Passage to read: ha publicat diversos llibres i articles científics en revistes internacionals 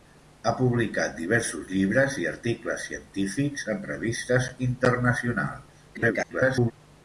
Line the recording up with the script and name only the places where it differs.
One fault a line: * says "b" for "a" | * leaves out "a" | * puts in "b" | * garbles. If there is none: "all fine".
* garbles